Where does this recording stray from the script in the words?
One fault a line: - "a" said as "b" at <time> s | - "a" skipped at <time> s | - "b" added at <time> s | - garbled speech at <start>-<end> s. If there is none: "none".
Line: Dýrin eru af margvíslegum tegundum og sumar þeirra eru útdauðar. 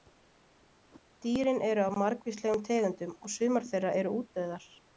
none